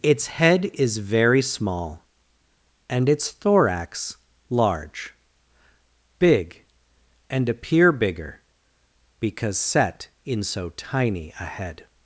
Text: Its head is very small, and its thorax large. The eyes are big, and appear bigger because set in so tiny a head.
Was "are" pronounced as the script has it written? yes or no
no